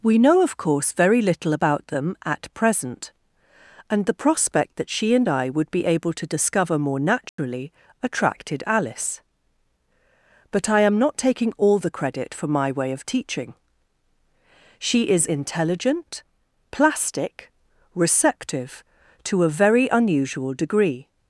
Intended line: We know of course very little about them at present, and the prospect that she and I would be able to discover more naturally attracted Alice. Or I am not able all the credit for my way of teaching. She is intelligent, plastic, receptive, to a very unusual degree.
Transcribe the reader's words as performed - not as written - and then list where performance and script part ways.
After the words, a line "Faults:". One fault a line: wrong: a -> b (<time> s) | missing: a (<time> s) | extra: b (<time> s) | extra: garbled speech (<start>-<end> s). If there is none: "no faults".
We know of course very little about them at present, and the prospect that she and I would be able to discover more naturally attracted Alice. But I am not taking all the credit for my way of teaching. She is intelligent, plastic, receptive, to a very unusual degree.
Faults:
wrong: Or -> But (10.5 s)
wrong: able -> taking (11.2 s)